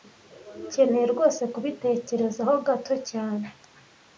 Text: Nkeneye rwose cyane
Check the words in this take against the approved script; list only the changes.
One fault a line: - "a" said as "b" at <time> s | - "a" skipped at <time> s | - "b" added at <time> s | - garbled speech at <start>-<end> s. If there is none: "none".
- "kubitekerezaho gato" added at 1.5 s